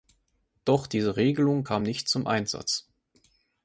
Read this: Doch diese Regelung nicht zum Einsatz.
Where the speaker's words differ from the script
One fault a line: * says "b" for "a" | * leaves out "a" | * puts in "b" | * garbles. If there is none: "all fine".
* puts in "kam"